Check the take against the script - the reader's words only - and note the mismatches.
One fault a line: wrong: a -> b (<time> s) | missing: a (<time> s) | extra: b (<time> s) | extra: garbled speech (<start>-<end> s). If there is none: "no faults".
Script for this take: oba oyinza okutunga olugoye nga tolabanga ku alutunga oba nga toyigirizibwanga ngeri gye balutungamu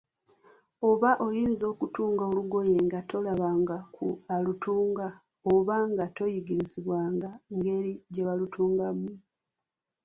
no faults